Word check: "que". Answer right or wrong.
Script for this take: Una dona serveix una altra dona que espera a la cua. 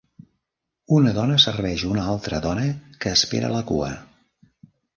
right